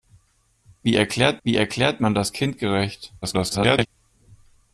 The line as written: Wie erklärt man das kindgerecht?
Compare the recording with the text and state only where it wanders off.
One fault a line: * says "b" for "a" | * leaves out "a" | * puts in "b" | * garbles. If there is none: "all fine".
* puts in "wie erklärt"
* garbles